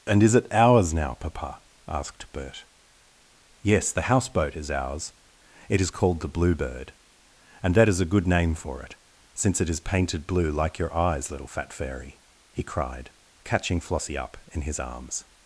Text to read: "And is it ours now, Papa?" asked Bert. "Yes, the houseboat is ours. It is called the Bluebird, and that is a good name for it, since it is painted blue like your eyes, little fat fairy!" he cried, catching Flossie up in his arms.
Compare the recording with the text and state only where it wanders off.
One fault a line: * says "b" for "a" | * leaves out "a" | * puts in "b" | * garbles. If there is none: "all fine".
all fine